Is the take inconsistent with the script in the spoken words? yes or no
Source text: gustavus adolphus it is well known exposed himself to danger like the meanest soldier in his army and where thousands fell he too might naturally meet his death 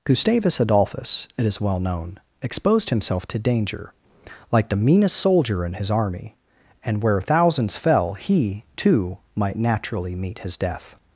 no